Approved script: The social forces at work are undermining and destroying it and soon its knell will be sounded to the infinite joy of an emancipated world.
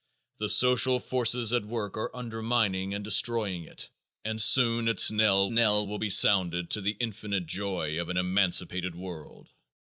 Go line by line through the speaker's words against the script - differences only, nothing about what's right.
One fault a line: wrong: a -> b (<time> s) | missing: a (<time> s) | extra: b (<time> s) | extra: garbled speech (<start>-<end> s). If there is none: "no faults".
extra: knell (5.5 s)